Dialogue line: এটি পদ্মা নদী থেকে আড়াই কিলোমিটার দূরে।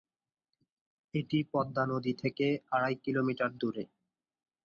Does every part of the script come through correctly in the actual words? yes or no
yes